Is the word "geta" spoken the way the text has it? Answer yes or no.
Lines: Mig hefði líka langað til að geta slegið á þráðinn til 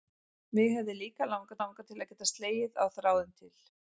yes